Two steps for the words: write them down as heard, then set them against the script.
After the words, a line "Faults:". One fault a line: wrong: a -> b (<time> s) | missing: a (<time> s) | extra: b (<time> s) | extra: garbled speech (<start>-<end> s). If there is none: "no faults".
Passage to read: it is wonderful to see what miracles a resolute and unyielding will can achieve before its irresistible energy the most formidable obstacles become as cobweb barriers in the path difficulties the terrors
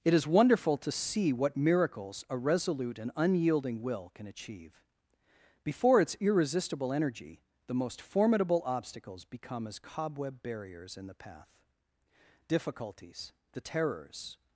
it is wonderful to see what miracles a resolute and unyielding will can achieve before its irresistible energy the most formidable obstacles become as cobweb barriers in the path difficulties the terrors
Faults:
no faults